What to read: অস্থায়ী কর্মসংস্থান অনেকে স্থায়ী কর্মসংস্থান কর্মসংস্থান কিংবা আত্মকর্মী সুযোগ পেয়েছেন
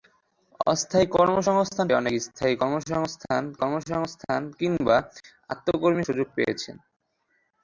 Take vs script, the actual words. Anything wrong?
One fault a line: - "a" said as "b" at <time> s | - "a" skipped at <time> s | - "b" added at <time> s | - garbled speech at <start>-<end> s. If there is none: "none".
none